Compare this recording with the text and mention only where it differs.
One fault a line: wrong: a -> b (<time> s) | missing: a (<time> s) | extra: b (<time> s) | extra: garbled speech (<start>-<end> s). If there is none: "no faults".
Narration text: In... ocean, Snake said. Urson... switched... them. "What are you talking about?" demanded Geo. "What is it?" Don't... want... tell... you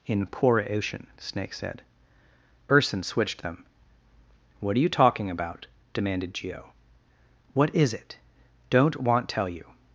extra: poor (0.2 s)